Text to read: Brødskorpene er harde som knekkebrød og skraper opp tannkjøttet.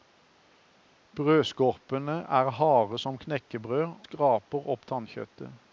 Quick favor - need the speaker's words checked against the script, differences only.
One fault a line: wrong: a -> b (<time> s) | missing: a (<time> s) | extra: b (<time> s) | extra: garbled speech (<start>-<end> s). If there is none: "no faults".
missing: og (4.0 s)